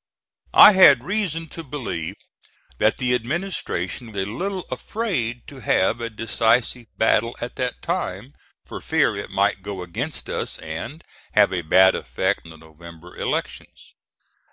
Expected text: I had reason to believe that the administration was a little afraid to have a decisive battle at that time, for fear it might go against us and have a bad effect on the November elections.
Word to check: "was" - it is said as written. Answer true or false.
false